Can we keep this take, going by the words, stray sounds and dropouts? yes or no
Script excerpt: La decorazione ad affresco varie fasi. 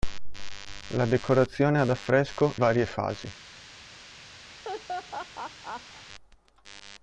no